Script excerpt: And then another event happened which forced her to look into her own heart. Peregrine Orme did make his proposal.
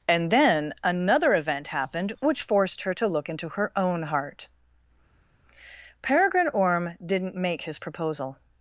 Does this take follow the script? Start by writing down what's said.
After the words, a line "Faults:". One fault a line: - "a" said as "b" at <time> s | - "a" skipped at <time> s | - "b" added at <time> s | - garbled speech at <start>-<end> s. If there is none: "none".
And then another event happened which forced her to look into her own heart. Peregrine Orme didn't make his proposal.
Faults:
- "did" said as "didn't" at 7.0 s